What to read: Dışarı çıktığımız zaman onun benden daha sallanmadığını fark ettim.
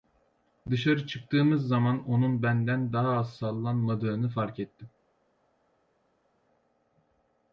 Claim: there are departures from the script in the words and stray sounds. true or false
true